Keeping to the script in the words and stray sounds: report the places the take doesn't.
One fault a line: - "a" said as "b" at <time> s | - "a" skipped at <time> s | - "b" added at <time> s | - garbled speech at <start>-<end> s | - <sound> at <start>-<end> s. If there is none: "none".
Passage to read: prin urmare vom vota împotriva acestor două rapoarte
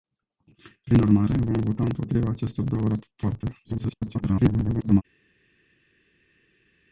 - garbled speech at 3.6-5.0 s